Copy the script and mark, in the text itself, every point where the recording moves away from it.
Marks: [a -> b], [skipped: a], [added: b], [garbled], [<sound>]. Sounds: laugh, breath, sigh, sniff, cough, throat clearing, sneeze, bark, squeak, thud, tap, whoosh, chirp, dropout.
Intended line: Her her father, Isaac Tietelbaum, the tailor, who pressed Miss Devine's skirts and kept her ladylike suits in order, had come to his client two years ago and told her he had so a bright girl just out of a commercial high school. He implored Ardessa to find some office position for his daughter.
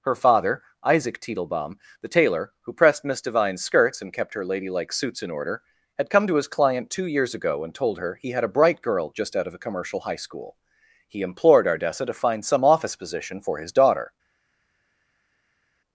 Her [skipped: her] father, Isaac Tietelbaum, the tailor, who pressed Miss Devine's skirts and kept her ladylike suits in order, had come to his client two years ago and told her he had [skipped: so] a bright girl just out of a commercial high school. He implored Ardessa to find some office position for his daughter.